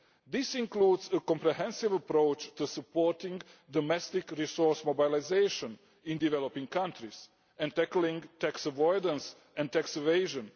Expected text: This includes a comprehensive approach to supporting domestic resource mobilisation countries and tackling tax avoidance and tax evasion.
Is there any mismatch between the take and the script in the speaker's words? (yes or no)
yes